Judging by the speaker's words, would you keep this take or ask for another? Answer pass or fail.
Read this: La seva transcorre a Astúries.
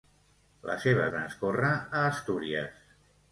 pass